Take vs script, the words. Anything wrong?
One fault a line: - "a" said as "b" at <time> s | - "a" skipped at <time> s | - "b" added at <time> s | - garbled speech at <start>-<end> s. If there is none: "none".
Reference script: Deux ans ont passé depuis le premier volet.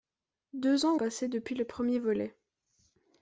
- "ont" skipped at 0.9 s